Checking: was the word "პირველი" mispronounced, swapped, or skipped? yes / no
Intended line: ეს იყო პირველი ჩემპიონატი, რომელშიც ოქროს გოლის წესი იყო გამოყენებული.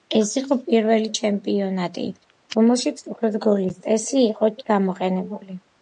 no